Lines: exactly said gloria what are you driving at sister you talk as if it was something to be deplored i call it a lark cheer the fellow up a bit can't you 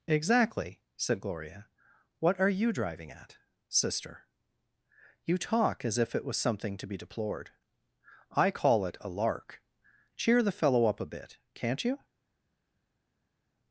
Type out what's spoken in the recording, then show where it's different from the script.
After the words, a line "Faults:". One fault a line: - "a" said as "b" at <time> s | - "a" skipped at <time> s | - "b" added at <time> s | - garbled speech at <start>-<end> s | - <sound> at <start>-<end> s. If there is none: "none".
exactly said gloria what are you driving at sister you talk as if it was something to be deplored i call it a lark cheer the fellow up a bit can't you
Faults:
none